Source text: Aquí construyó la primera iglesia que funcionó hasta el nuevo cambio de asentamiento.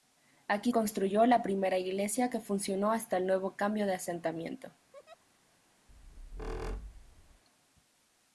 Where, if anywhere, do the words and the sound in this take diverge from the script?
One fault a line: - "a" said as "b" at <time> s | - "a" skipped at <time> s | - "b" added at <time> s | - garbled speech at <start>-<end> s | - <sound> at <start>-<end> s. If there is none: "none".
- laugh at 4.9-5.3 s
- squeak at 5.9-7.4 s